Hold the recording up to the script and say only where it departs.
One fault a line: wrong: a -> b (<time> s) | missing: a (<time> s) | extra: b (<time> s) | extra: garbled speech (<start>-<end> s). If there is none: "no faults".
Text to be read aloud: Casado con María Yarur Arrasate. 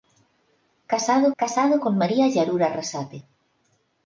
extra: casado (1.4 s)